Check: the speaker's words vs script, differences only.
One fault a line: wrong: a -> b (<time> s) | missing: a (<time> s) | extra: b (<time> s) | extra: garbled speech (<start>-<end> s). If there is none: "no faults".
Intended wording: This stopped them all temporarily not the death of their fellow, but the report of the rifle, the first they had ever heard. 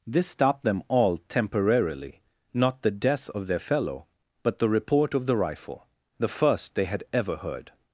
no faults